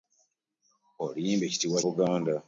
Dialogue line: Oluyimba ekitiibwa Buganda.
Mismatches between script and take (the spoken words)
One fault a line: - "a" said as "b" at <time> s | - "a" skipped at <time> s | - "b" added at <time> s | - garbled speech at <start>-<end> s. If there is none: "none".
none